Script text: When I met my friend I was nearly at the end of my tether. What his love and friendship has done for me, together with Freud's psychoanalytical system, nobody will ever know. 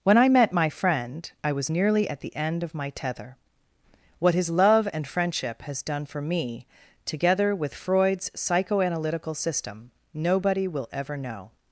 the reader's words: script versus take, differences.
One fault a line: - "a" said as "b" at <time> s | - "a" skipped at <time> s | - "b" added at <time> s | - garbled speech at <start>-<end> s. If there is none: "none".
none